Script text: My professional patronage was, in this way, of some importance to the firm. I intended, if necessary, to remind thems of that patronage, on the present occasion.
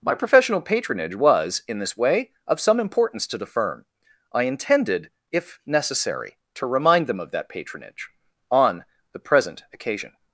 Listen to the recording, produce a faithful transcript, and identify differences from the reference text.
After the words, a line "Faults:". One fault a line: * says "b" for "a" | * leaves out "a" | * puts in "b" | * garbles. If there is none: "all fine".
My professional patronage was, in this way, of some importance to the firm. I intended, if necessary, to remind them of that patronage, on the present occasion.
Faults:
* says "them" for "thems"